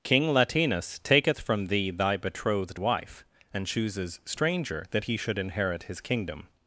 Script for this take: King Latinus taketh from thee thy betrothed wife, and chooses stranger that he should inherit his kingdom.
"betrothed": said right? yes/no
yes